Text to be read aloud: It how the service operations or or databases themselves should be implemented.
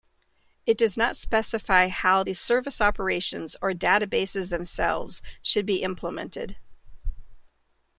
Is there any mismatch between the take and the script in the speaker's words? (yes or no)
yes